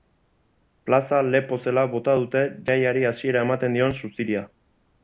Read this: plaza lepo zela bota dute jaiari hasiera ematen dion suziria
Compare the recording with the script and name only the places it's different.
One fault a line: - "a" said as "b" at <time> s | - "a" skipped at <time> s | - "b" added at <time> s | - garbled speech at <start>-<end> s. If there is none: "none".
none